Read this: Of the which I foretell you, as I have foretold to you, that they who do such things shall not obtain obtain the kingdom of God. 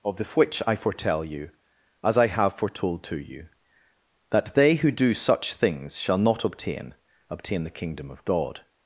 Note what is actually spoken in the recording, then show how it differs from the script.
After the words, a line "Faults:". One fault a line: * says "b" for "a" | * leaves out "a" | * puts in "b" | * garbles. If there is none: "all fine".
Of the which I foretell you, as I have foretold to you, that they who do such things shall not obtain obtain the kingdom of God.
Faults:
all fine